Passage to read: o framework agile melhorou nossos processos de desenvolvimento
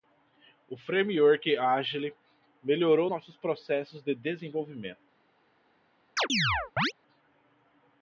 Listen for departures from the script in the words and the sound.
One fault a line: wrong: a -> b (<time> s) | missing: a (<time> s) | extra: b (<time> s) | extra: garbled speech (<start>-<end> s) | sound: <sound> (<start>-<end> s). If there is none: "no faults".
sound: chirp (6.2-6.9 s)